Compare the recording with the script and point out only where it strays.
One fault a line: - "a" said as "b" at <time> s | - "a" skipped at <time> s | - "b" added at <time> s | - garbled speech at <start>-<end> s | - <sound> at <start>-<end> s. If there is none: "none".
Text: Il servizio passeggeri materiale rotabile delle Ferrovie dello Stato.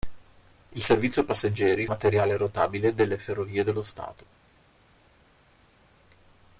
none